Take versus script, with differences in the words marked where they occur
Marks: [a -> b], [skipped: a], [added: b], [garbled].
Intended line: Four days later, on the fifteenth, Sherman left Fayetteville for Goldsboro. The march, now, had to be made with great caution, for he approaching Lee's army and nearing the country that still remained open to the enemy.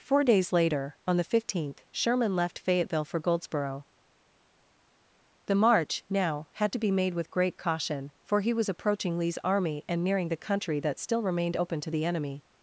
Four days later, on the fifteenth, Sherman left Fayetteville for Goldsboro. The march, now, had to be made with great caution, for he [added: was] approaching Lee's army and nearing the country that still remained open to the enemy.